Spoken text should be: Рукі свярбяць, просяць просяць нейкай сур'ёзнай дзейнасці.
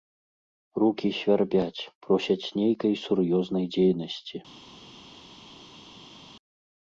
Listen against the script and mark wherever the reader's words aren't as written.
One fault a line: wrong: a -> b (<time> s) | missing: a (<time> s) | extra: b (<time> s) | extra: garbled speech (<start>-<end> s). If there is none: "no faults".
missing: просяць (2.5 s)